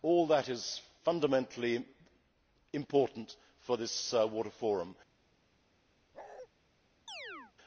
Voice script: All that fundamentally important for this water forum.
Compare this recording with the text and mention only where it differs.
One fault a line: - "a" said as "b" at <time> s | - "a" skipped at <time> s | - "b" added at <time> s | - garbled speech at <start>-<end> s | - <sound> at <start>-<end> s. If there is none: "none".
- "is" added at 0.5 s
- bark at 6.1-6.5 s
- chirp at 7.1-7.5 s